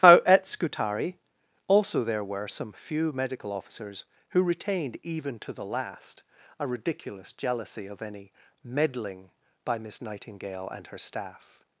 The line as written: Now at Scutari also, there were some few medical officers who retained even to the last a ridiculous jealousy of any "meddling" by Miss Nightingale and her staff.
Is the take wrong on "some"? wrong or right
right